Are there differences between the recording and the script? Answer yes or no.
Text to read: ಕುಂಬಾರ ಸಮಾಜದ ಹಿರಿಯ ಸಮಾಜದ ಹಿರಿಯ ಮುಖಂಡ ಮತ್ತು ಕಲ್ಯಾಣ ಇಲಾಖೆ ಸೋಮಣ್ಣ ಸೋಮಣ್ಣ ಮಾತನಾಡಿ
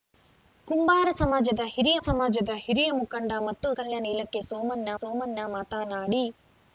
no